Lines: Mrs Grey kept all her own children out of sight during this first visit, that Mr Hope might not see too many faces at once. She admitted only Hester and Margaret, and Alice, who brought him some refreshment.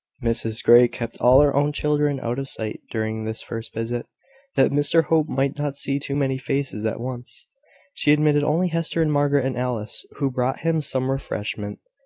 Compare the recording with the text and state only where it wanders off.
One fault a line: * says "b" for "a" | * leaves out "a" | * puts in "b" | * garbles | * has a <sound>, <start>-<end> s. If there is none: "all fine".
all fine